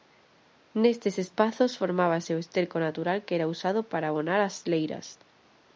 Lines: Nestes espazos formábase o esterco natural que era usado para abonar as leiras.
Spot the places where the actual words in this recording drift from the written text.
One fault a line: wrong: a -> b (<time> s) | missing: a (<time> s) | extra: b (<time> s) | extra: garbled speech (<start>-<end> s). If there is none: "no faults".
no faults